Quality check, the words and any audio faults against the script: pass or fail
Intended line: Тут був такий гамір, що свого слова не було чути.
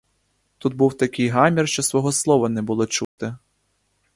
fail